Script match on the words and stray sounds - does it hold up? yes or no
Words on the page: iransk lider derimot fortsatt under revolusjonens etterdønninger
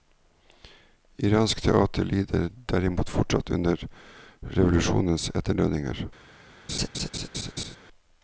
no